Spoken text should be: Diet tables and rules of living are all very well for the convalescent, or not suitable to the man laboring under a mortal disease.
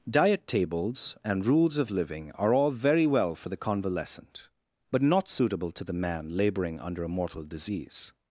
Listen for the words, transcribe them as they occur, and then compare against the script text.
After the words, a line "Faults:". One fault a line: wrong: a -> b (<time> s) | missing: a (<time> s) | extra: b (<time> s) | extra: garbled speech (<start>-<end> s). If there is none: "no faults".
Diet tables and rules of living are all very well for the convalescent, but not suitable to the man laboring under a mortal disease.
Faults:
wrong: or -> but (4.9 s)